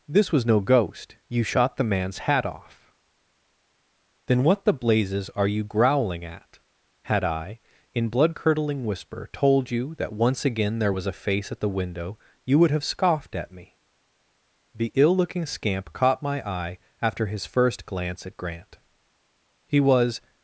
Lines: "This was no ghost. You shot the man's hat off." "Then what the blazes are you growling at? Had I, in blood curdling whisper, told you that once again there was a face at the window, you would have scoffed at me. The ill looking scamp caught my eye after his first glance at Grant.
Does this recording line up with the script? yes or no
no